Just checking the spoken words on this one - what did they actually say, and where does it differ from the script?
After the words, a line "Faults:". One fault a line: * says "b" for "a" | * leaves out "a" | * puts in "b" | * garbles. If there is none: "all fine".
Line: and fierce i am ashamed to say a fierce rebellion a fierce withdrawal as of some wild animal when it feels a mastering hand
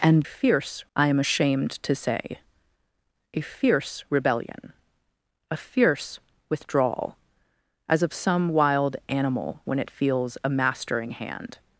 and fierce i am ashamed to say a fierce rebellion a fierce withdrawal as of some wild animal when it feels a mastering hand
Faults:
all fine